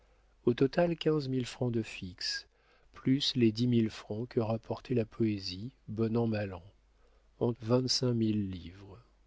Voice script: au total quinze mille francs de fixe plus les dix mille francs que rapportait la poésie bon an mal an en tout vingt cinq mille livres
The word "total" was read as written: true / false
true